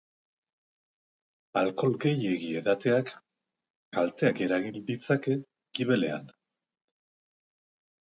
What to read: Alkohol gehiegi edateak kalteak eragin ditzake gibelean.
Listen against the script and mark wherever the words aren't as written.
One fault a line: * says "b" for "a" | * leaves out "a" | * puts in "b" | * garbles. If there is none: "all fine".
all fine